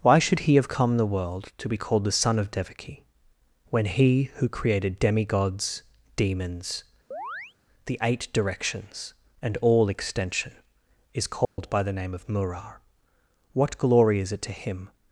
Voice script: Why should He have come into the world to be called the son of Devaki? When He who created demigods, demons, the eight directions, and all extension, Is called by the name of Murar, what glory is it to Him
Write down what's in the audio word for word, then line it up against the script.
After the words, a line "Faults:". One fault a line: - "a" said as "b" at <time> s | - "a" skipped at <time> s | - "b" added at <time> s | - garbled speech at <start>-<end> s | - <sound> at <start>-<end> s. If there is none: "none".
Why should He have come the world to be called the son of Devaki? When He who created demigods, demons, the eight directions, and all extension, Is called by the name of Murar, what glory is it to Him
Faults:
- "into" skipped at 1.0 s
- chirp at 7.1-7.5 s
- dropout at 11.4-11.6 s